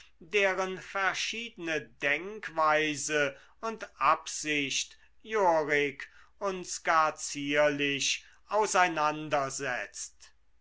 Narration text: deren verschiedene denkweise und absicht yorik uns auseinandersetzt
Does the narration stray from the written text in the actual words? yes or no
yes